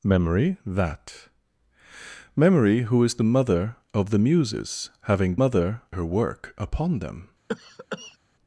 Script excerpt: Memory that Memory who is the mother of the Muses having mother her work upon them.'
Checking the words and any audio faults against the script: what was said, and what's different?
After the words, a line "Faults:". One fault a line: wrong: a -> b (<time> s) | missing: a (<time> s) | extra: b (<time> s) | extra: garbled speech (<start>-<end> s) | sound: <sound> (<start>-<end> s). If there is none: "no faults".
Memory that Memory who is the mother of the Muses having mother her work upon them.'
Faults:
sound: cough (7.5-8.2 s)